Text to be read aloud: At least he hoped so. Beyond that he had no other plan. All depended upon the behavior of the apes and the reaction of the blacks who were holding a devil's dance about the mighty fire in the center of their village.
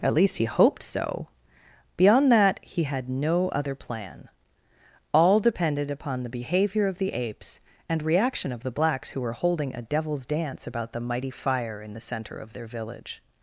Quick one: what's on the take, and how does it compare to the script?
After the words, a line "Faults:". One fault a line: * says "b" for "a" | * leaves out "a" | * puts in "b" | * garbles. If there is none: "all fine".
At least he hoped so. Beyond that he had no other plan. All depended upon the behavior of the apes and reaction of the blacks who were holding a devil's dance about the mighty fire in the center of their village.
Faults:
* leaves out "the"